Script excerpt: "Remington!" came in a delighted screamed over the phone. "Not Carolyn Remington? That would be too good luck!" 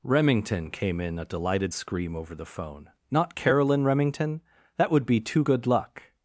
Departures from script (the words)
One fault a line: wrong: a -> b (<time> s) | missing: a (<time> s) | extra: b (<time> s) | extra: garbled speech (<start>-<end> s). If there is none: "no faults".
wrong: screamed -> scream (1.7 s)